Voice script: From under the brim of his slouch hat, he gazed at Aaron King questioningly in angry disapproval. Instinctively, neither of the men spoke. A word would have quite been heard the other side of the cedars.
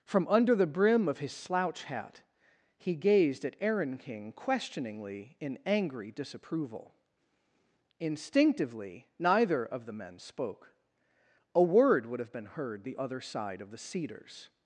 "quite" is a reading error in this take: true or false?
true